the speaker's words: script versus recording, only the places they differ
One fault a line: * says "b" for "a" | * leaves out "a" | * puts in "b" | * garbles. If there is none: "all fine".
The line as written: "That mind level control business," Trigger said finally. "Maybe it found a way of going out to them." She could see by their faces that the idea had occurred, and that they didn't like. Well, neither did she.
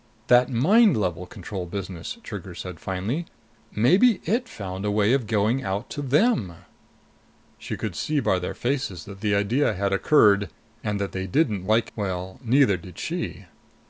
all fine